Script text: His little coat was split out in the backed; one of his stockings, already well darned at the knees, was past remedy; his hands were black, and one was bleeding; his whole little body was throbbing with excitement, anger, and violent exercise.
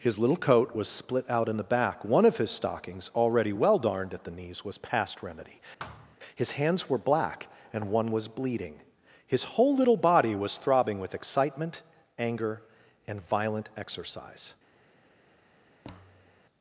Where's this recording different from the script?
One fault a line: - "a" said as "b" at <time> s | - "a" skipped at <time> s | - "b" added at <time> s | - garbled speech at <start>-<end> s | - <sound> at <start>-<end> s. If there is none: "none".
- "backed" said as "back" at 1.7 s
- thud at 5.8-6.2 s
- thud at 15.8-16.4 s